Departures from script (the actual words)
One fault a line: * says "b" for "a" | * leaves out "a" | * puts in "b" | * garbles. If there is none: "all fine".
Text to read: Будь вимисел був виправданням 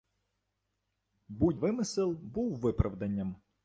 all fine